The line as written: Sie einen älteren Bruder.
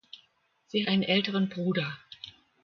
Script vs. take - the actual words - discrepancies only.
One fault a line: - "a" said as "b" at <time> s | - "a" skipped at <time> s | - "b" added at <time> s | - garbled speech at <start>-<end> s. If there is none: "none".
none